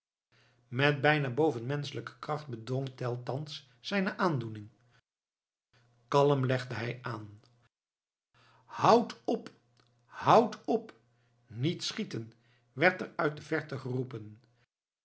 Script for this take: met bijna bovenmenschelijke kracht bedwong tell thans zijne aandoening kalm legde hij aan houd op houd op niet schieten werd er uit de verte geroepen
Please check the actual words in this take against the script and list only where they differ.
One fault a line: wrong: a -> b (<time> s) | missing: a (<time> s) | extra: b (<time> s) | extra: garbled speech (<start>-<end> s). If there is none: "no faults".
no faults